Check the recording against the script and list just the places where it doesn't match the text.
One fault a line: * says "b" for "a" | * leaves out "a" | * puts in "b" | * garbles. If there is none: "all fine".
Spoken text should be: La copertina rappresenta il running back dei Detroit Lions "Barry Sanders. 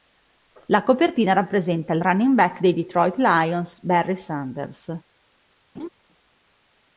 all fine